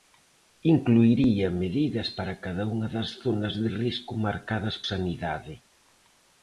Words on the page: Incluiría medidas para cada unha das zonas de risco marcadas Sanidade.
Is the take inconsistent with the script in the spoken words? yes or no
no